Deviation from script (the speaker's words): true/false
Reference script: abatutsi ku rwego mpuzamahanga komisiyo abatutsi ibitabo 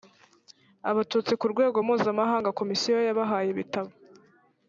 true